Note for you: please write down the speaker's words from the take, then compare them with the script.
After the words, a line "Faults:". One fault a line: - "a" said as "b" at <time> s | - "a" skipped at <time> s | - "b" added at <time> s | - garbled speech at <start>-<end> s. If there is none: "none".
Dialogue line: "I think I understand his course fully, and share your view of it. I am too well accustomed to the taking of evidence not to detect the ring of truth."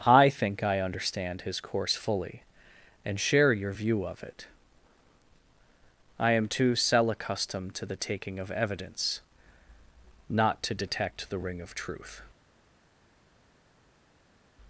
"I think I understand his course fully, and share your view of it. I am too cell accustomed to the taking of evidence not to detect the ring of truth."
Faults:
- "well" said as "cell" at 6.8 s